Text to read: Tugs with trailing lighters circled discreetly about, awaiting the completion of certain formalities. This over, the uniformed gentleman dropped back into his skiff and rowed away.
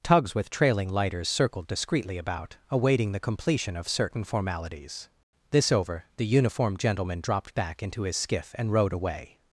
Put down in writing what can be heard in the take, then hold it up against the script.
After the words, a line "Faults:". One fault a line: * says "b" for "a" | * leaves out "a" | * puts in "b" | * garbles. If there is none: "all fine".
Tugs with trailing lighters circled discreetly about, awaiting the completion of certain formalities. This over, the uniformed gentleman dropped back into his skiff and rowed away.
Faults:
all fine